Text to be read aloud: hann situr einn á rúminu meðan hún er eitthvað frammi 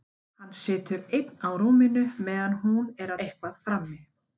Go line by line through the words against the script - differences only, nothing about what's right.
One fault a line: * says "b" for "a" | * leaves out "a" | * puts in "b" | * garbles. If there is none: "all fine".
all fine